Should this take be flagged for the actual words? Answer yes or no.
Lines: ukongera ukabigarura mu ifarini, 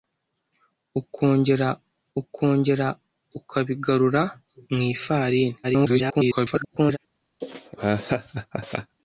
yes